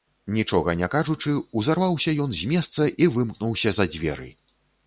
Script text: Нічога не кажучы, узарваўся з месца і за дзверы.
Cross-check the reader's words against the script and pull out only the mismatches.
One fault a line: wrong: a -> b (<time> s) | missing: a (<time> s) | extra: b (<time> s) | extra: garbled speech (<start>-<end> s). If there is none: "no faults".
extra: ён (2.2 s)
extra: вымкнуўся (3.2 s)